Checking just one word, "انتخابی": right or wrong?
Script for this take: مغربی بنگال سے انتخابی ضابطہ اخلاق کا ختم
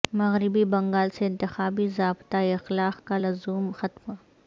right